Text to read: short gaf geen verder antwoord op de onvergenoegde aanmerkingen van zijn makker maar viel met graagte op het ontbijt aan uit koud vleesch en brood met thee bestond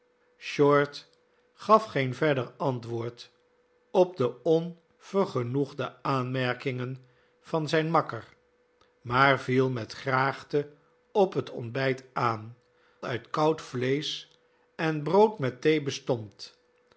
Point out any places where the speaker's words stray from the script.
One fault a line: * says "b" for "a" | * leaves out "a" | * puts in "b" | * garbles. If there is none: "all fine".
all fine